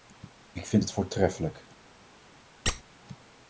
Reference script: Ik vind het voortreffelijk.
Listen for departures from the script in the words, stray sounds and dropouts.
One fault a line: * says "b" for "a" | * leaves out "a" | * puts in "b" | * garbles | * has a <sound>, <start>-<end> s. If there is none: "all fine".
* has a squeak, 2.7-2.8 s